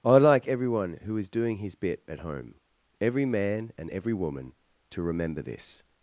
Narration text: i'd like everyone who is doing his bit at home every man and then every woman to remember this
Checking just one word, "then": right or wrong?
wrong